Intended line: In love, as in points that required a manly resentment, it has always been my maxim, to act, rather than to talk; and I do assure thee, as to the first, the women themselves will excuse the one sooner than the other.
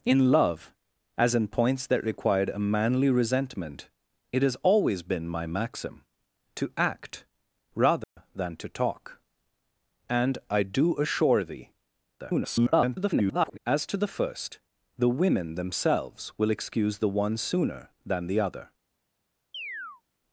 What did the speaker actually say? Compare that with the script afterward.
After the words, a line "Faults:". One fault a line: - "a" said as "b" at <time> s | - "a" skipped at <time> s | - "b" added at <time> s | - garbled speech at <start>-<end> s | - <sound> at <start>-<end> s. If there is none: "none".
In love, as in points that required a manly resentment, it has always been my maxim, to act, rather than to talk; and I do assure thee, [garbled] as to the first, the women themselves will excuse the one sooner than the other.
Faults:
- dropout at 8.0-8.2 s
- garbled speech at 12.2-13.6 s
- chirp at 19.5-20.0 s